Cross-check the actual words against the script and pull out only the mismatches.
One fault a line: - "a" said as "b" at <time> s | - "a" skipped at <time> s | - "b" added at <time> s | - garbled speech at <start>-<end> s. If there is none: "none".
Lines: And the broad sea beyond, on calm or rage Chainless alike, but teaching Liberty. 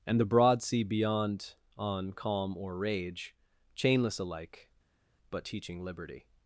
none